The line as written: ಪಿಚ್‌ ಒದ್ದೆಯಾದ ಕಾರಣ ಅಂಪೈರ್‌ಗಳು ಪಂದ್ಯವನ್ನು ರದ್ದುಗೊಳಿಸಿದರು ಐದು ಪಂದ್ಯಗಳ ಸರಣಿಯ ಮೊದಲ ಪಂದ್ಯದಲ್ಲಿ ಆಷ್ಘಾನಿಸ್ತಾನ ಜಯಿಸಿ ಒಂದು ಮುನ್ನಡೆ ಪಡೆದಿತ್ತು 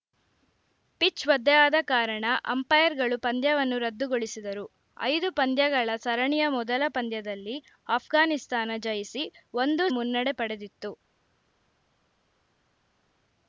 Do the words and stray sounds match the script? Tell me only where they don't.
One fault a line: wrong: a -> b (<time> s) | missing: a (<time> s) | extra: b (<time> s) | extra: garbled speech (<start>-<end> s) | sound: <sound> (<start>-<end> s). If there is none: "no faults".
no faults